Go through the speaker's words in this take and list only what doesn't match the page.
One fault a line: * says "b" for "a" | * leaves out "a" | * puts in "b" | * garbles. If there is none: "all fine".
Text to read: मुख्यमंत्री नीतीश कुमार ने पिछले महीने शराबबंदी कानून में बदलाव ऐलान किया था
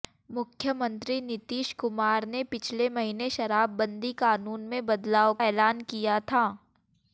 all fine